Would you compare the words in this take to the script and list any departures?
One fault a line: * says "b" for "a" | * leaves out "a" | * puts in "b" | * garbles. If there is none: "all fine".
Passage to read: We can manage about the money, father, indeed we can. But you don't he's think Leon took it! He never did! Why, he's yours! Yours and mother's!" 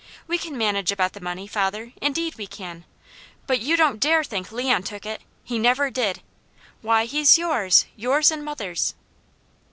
* says "dare" for "he's"